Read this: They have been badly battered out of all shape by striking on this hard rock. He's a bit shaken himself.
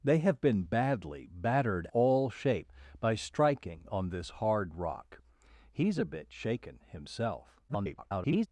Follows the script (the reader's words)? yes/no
no